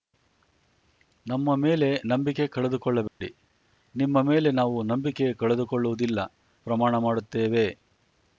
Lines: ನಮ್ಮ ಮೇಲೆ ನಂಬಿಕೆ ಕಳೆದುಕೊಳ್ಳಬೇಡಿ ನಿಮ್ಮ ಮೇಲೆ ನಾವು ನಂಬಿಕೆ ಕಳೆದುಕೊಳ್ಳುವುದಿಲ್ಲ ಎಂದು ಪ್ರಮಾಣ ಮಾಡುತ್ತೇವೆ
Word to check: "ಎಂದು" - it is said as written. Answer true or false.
false